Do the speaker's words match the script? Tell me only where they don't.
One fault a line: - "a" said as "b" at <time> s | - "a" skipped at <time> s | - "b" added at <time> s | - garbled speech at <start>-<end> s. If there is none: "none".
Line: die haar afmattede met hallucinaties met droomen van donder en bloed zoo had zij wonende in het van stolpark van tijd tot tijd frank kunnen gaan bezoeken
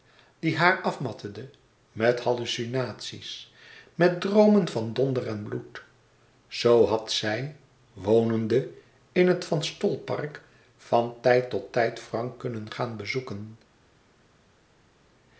none